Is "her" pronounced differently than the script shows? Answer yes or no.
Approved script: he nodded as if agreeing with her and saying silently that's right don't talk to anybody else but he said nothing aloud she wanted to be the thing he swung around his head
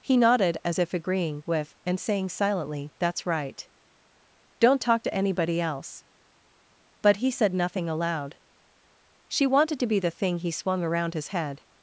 yes